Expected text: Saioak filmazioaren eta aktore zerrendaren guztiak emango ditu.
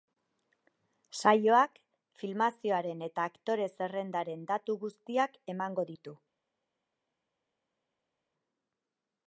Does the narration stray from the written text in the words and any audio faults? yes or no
yes